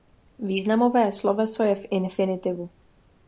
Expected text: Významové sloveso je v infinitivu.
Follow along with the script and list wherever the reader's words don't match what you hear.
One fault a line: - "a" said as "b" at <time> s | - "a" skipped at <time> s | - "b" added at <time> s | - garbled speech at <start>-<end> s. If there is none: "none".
none